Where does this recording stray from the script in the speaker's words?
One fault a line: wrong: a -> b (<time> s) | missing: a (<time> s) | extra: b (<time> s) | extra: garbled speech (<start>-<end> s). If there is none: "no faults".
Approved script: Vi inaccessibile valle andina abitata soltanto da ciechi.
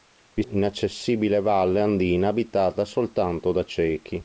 no faults